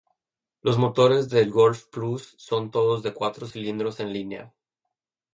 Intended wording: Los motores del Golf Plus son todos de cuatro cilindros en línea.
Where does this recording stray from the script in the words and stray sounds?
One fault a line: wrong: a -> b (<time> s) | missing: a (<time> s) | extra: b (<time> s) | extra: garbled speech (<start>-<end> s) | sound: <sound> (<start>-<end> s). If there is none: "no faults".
no faults